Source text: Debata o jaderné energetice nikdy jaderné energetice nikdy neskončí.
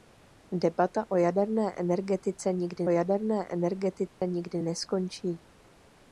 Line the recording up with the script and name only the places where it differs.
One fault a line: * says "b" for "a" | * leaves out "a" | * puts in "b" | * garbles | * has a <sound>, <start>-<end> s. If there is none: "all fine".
* has a dropout, 4.1-4.2 s